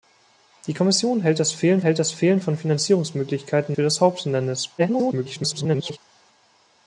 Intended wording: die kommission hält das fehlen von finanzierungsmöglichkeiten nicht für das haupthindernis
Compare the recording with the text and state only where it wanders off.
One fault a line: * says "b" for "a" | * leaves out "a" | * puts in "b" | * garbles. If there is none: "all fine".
* puts in "hält das fehlen"
* leaves out "nicht"
* garbles